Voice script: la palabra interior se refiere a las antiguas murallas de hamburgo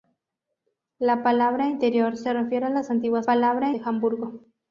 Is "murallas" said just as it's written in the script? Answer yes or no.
no